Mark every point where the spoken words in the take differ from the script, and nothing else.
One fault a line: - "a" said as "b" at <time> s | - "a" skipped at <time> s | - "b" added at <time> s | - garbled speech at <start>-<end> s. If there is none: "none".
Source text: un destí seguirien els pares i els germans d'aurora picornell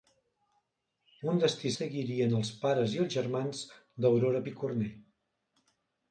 none